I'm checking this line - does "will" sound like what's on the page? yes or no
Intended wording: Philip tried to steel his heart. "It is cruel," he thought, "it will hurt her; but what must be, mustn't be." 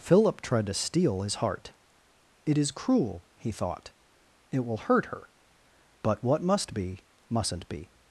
yes